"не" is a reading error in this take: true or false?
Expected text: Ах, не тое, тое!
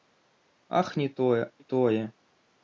false